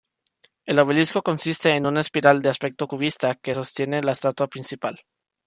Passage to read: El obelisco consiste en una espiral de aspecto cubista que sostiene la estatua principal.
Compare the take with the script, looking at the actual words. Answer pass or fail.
pass